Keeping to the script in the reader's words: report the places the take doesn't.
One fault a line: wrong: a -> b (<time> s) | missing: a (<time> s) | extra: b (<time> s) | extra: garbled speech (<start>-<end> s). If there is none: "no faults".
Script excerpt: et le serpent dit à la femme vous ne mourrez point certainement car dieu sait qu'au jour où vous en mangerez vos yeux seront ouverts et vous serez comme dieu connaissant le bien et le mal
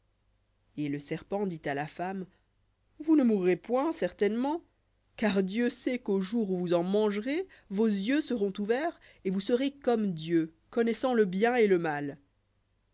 no faults